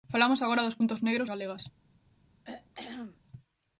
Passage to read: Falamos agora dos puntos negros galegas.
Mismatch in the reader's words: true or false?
false